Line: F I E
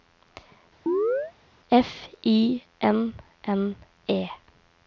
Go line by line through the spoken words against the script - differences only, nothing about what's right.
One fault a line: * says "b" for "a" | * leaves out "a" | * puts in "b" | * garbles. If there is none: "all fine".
* puts in "N N"